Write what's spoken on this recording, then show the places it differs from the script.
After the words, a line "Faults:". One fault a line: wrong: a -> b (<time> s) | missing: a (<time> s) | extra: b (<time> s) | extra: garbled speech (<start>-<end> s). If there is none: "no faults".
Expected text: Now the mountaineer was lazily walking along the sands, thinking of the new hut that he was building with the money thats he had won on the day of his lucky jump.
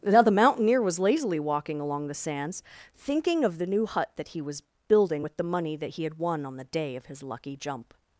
Now the mountaineer was lazily walking along the sands, thinking of the new hut that he was building with the money that he had won on the day of his lucky jump.
Faults:
wrong: thats -> that (5.7 s)